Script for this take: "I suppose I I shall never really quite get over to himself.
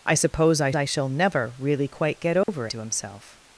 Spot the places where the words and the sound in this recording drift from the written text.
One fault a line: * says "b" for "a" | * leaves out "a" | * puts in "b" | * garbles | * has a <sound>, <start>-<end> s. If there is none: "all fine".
* has a dropout, 2.4-2.5 s